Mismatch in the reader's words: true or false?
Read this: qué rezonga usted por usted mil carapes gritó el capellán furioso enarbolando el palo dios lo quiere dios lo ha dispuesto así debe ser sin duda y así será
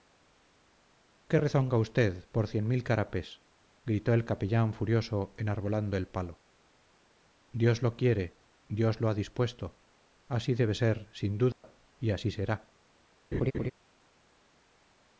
true